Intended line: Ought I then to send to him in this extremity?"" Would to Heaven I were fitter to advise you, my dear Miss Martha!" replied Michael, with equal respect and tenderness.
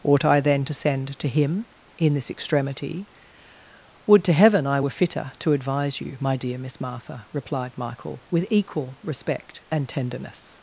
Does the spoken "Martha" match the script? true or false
true